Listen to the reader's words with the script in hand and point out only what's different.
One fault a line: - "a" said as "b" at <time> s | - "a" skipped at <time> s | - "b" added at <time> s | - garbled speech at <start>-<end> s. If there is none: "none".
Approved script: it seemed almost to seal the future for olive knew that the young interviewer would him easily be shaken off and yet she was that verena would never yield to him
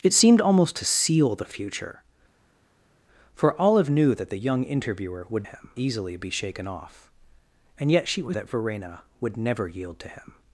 none